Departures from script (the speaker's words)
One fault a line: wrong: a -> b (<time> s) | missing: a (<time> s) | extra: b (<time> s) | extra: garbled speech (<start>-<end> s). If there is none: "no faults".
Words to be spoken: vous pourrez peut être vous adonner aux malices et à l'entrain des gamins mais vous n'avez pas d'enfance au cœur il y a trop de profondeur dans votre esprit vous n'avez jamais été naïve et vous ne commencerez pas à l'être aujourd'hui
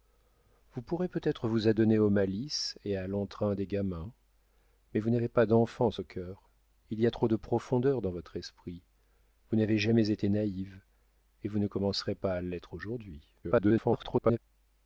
extra: garbled speech (13.4-14.4 s)